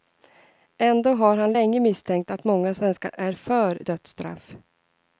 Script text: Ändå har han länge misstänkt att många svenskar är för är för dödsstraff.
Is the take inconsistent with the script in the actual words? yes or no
yes